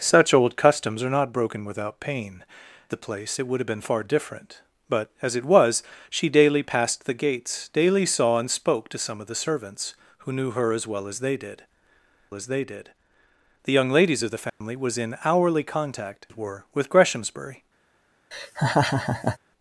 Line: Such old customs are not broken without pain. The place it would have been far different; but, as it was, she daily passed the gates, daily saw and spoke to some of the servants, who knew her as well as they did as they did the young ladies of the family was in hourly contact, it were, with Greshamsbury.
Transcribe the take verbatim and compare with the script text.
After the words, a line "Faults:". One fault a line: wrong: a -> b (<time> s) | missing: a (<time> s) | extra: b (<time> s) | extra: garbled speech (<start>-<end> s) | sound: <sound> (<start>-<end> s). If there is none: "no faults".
Such old customs are not broken without pain. The place it would have been far different; but, as it was, she daily passed the gates, daily saw and spoke to some of the servants, who knew her as well as they did as they did the young ladies of the family was in hourly contact, it were, with Greshamsbury.
Faults:
sound: dropout (14.5-14.6 s)
sound: laugh (18.3-19.4 s)